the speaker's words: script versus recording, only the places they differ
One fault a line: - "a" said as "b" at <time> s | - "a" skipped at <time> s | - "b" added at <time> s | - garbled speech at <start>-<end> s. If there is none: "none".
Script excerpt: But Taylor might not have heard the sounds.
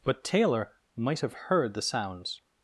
- "not" skipped at 1.2 s